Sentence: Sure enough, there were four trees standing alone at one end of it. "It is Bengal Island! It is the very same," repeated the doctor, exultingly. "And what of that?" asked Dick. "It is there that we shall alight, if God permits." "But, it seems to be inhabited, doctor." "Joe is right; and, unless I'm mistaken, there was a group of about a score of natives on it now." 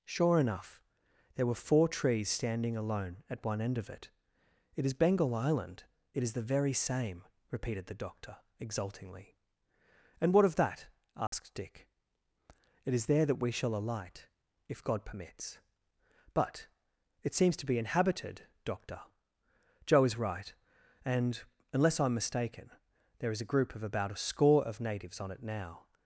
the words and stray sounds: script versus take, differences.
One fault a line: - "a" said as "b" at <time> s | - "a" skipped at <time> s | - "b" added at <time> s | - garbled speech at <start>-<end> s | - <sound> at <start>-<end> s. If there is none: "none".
- dropout at 11.3-11.3 s
- "was" said as "is" at 23.3 s